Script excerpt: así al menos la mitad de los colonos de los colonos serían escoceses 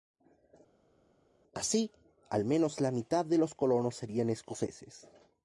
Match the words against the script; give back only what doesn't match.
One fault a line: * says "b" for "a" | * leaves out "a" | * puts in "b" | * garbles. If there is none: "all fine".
* leaves out "de los colonos"